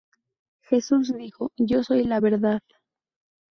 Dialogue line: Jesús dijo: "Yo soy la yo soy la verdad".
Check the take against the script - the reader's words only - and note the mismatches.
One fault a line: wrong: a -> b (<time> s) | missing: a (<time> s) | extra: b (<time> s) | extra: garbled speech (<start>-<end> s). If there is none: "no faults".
missing: yo soy la (2.2 s)